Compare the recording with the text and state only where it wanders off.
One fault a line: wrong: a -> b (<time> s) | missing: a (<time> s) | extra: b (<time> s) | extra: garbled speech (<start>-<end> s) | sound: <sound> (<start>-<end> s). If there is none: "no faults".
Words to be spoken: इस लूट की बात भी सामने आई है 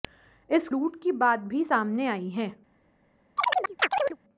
sound: chirp (3.4-4.2 s)